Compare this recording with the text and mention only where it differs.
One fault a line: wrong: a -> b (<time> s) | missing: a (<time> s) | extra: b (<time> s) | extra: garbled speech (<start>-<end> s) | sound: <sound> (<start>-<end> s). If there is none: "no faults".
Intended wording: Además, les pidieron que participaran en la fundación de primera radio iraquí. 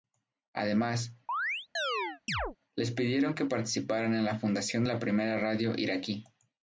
sound: chirp (1.3-2.6 s)
extra: la (4.9 s)